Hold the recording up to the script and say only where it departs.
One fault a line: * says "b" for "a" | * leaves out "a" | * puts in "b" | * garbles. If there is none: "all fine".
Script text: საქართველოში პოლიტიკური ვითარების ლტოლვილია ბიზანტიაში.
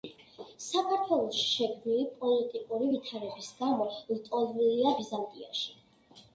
* puts in "შექმნილი"
* puts in "გამო"